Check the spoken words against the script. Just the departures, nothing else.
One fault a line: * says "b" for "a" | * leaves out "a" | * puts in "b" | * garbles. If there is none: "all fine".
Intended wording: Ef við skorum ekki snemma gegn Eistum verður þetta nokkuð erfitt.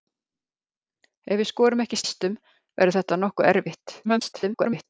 * leaves out "snemma gegn"
* garbles